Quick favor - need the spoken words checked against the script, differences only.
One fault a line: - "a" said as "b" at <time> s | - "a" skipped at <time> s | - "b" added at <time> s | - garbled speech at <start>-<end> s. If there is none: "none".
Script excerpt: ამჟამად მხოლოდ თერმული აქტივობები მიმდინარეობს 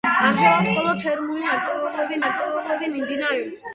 - "აქტივობები" added at 2.3 s